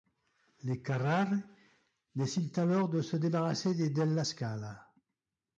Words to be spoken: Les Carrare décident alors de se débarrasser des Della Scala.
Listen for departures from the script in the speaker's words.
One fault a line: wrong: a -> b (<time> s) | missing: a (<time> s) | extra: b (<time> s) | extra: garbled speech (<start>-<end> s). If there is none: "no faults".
no faults